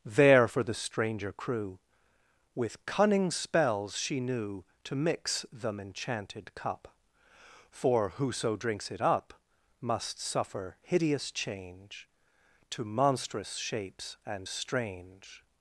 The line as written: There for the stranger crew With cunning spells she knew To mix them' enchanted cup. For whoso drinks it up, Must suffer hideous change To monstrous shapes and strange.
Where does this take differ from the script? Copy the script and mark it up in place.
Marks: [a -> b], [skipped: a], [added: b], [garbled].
There for the stranger crew With cunning spells she knew To mix them' enchanted cup. For whoso drinks it up, Must suffer hideous change To monstrous shapes and strange.